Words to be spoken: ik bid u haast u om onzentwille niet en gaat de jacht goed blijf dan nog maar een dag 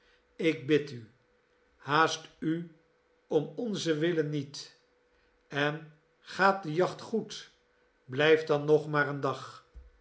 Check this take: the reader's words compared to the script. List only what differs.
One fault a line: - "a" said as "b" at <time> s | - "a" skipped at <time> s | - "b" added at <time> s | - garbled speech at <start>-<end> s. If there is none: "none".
none